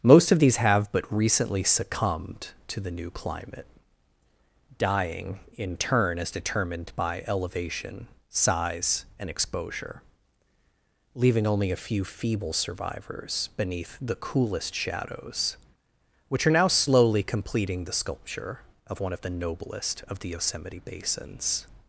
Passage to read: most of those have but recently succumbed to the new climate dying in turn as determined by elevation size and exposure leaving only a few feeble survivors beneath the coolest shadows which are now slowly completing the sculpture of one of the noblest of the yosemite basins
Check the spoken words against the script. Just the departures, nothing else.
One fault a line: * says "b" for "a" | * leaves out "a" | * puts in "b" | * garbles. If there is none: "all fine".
* says "these" for "those"